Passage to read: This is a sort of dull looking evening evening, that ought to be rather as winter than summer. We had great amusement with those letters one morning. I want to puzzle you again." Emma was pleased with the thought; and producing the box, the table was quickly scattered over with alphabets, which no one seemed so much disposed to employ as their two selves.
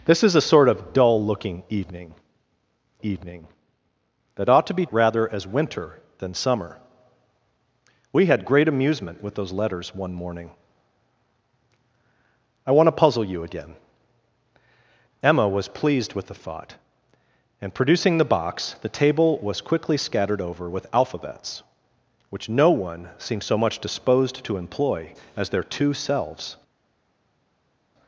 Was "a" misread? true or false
false